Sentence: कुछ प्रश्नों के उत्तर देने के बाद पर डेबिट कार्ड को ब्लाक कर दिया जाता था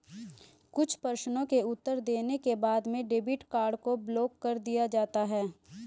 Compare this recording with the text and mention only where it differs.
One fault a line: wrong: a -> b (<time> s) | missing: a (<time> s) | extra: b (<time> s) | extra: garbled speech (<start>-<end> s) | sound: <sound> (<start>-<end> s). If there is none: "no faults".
wrong: पर -> में (2.9 s)
wrong: था -> है (5.3 s)